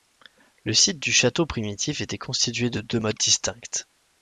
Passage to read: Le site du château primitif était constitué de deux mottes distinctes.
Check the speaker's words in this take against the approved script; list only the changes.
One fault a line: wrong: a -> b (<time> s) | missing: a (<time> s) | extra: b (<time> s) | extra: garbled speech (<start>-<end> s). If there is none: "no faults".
no faults